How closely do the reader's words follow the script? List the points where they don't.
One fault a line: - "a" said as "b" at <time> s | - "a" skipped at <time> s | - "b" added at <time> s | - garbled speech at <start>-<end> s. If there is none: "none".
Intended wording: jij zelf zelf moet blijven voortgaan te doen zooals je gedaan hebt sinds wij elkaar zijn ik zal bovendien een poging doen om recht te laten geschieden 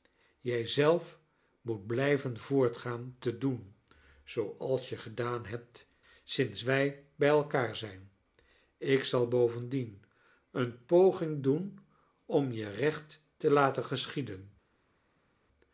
- "zelf" skipped at 1.2 s
- "bij" added at 7.2 s
- "je" added at 12.5 s